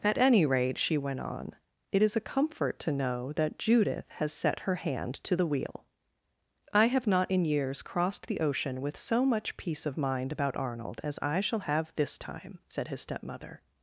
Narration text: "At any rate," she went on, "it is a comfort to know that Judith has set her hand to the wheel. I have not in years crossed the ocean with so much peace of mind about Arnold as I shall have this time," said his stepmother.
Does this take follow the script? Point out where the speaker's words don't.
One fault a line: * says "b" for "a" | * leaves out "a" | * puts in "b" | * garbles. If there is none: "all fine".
all fine